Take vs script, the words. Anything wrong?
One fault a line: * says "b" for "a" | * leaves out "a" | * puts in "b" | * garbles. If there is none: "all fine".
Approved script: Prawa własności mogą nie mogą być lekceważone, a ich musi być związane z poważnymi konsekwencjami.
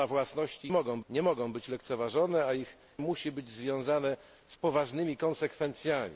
all fine